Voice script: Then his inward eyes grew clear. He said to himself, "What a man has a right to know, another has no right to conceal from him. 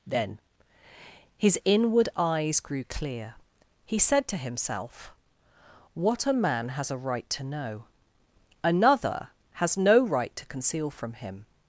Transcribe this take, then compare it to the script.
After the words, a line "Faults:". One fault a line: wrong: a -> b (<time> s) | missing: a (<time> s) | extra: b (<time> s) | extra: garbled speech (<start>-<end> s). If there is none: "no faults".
Then his inward eyes grew clear. He said to himself, "What a man has a right to know, another has no right to conceal from him.
Faults:
no faults